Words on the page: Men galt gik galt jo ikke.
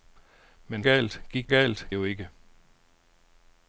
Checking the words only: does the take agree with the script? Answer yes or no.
yes